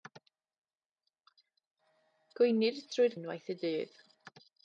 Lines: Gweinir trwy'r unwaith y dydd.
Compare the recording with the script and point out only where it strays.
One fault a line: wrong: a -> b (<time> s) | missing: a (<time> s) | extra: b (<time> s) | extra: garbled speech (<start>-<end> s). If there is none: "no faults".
no faults